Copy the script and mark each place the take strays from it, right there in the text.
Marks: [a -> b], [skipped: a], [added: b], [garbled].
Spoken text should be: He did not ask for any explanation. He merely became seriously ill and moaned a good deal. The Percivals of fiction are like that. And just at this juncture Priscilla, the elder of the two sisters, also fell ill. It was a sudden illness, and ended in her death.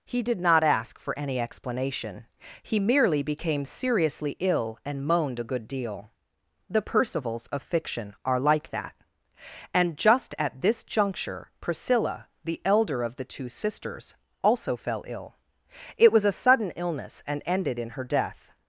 He did not ask for any explanation. He merely became seriously ill and moaned a good deal. The Percivals of fiction are like that. And just at this juncture Priscilla, the elder of the two sisters, also fell ill. It was a sudden illness, and ended in her death.